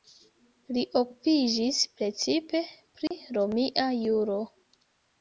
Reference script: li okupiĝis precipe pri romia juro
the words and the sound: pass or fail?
fail